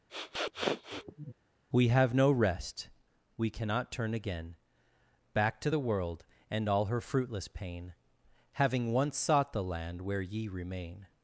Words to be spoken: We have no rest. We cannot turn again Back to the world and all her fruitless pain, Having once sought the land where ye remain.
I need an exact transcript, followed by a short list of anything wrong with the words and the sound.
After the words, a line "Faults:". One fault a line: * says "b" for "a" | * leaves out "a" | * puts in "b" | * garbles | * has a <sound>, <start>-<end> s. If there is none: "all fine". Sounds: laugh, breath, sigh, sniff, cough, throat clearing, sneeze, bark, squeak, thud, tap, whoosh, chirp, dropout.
We have no rest. We cannot turn again Back to the world and all her fruitless pain, Having once sought the land where ye remain.
Faults:
* has a sniff, 0.1-1.3 s